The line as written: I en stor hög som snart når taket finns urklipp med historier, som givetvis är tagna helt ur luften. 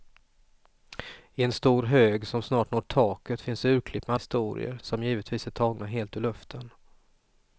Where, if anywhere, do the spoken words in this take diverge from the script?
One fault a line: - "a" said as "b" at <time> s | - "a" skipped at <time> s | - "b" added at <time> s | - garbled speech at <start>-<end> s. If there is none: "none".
none